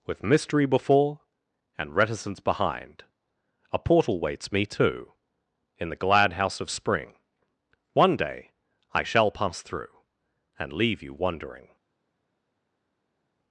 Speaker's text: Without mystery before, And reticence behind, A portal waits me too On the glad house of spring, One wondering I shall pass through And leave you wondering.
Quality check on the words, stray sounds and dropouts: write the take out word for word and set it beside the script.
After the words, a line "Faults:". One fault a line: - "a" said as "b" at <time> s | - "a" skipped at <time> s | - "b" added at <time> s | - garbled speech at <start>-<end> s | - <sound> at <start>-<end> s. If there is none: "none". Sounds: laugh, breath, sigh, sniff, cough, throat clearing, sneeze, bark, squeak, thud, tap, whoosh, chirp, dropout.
With mystery before, And reticence behind, A portal waits me too In the glad house of spring, One day I shall pass through And leave you wondering.
Faults:
- "Without" said as "With" at 0.1 s
- "On" said as "In" at 5.8 s
- "wondering" said as "day" at 8.2 s